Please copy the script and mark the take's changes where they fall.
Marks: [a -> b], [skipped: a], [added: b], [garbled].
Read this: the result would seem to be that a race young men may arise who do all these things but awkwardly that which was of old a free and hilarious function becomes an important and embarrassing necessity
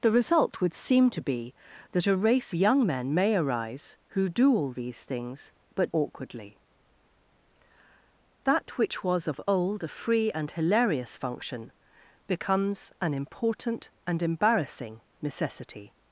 the result would seem to be that a race young men may arise who do all these things but awkwardly that which was of old a free and hilarious function becomes an important and embarrassing necessity